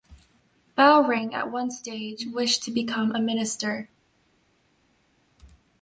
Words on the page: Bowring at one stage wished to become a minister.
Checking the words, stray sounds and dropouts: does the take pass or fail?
pass